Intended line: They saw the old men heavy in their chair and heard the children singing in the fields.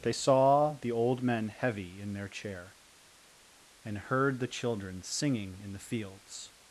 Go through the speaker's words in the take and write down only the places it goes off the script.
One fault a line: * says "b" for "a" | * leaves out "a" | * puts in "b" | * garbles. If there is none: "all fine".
all fine